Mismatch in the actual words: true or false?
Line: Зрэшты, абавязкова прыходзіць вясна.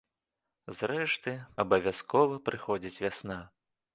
false